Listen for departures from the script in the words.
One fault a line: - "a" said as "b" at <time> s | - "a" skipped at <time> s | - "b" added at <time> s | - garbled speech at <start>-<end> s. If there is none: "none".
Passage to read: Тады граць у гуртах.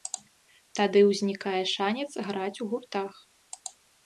- "ўзнікае шанец" added at 1.1 s